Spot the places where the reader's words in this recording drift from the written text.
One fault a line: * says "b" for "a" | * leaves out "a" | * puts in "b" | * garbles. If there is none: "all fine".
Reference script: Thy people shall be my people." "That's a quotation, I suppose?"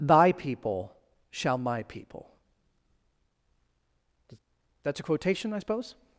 * leaves out "be"